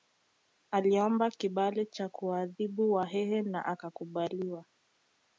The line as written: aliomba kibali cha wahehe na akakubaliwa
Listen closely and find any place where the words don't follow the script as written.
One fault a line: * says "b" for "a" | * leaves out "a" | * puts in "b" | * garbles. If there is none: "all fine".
* puts in "kuwaadhibu"